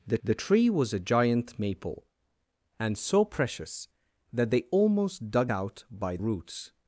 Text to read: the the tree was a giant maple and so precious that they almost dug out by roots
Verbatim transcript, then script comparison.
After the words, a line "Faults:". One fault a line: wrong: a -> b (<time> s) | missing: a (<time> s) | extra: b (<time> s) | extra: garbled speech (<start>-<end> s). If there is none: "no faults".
the the tree was a giant maple and so precious that they almost dug out by roots
Faults:
no faults